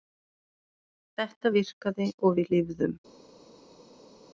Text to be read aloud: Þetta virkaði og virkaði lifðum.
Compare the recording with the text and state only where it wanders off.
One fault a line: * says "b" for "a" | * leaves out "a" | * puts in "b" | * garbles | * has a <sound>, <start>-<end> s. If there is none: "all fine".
* says "við" for "virkaði"